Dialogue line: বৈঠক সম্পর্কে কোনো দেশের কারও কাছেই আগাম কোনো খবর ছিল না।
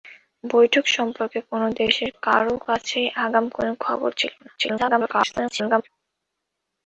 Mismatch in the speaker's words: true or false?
true